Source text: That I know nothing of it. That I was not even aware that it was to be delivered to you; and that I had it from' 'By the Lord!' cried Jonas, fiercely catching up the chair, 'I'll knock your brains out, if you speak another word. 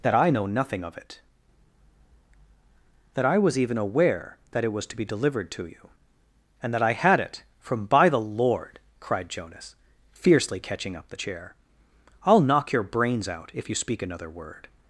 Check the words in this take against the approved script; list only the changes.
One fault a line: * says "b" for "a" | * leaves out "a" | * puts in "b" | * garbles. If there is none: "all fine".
* leaves out "not"